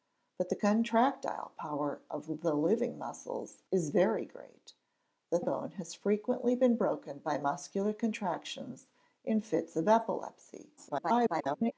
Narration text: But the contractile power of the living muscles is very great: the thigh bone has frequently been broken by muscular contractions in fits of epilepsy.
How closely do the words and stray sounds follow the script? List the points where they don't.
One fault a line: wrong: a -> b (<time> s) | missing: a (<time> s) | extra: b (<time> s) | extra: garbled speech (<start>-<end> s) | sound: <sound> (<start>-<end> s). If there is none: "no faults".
missing: thigh (5.4 s)
extra: garbled speech (10.8-11.7 s)